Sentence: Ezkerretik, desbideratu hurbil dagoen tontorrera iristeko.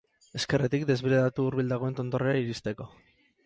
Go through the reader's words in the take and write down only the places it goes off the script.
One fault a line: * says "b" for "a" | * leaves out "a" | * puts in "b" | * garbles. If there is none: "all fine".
all fine